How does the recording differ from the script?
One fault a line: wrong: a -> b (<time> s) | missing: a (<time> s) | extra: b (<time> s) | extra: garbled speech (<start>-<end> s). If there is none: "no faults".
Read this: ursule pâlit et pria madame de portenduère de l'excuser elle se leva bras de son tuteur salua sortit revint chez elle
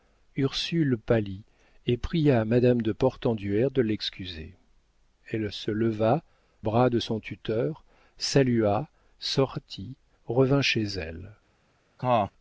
no faults